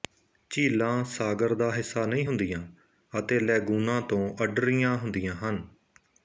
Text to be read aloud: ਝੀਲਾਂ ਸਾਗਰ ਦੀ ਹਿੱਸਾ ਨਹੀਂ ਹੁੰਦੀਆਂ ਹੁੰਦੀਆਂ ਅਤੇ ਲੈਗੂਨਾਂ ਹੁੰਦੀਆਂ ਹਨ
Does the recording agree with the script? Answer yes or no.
no